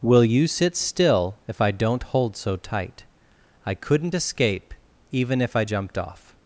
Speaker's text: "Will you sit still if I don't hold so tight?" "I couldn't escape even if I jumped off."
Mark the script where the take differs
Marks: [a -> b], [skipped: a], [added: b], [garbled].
"Will you sit still if I don't hold so tight?" "I couldn't escape even if I jumped off."